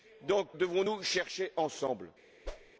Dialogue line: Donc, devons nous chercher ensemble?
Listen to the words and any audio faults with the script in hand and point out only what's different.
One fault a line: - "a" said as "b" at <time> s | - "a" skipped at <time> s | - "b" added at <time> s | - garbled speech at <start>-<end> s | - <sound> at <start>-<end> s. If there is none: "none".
- whoosh at 2.4-2.7 s